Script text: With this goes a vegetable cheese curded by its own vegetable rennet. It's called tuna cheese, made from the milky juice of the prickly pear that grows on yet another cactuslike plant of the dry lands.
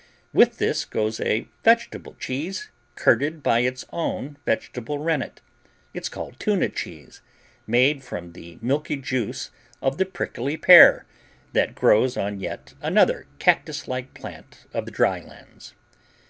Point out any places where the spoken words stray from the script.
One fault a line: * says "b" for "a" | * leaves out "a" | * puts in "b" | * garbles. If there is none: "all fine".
all fine